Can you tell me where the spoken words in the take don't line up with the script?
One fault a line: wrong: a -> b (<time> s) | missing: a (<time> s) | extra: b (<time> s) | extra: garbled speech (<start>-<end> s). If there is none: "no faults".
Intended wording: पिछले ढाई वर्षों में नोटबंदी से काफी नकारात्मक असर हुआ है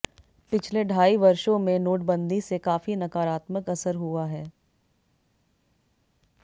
no faults